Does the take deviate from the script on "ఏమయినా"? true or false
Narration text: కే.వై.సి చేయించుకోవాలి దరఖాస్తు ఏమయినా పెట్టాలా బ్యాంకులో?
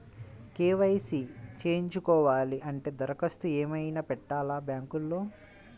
false